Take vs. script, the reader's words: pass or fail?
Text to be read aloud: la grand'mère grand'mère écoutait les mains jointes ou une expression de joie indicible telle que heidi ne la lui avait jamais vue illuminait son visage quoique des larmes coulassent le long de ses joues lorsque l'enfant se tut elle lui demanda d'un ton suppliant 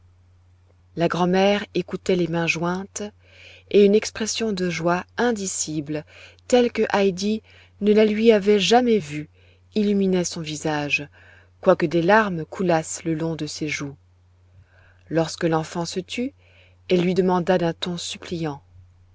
fail